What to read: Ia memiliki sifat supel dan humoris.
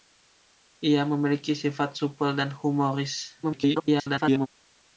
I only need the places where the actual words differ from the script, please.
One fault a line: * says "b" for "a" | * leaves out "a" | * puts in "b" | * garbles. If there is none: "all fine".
* garbles